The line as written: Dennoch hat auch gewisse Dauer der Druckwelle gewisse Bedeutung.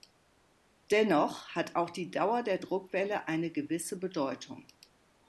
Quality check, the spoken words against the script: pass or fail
fail